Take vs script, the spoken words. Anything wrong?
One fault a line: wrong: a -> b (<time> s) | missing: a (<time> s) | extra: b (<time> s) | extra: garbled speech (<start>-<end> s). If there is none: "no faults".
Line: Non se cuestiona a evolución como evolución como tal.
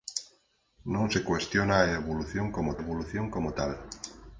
no faults